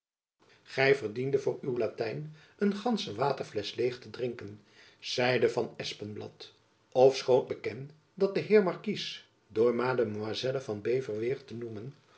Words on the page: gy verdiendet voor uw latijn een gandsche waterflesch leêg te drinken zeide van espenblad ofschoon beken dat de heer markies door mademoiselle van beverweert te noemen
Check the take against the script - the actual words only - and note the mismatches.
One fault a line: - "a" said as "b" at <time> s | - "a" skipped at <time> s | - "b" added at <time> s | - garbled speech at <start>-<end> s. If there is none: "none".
none